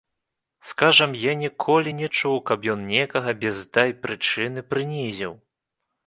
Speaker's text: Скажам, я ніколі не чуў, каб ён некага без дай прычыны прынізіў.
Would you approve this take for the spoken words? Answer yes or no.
yes